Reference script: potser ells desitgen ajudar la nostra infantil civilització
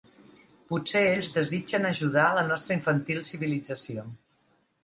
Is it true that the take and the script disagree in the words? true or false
false